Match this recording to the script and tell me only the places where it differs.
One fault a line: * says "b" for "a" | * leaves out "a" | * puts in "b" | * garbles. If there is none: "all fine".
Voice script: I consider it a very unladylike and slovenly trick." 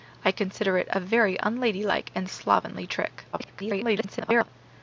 * garbles